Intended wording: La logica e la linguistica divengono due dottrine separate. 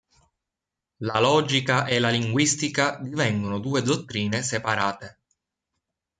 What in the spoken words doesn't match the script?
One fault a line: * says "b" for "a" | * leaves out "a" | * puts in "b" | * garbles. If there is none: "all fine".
all fine